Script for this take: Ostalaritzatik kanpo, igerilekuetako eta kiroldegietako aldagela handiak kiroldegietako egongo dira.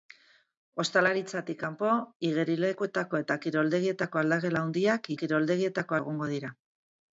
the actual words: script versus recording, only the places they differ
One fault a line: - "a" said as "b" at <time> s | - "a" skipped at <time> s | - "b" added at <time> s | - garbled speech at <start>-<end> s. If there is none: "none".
none